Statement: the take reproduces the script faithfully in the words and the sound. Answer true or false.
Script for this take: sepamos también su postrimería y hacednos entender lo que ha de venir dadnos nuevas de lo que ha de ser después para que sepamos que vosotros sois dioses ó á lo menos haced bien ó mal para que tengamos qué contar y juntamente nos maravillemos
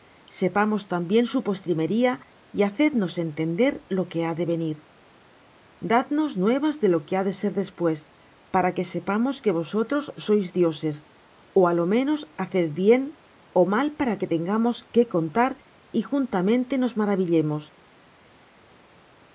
true